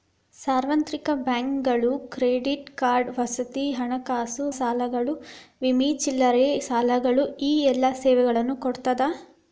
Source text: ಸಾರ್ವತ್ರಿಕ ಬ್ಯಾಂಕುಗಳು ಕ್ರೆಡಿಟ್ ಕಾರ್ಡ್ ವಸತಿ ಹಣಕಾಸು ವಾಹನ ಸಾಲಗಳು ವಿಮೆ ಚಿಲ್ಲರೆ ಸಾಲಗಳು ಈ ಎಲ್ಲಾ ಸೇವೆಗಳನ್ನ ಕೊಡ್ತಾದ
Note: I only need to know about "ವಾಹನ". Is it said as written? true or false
false